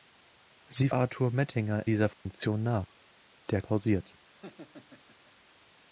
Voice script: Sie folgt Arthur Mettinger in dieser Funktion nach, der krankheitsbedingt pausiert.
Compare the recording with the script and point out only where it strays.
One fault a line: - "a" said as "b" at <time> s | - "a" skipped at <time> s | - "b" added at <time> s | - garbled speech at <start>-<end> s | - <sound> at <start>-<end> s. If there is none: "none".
- "folgt" skipped at 0.9 s
- "in" skipped at 1.9 s
- dropout at 2.1-2.3 s
- "krankheitsbedingt" skipped at 3.6 s
- laugh at 4.3-5.3 s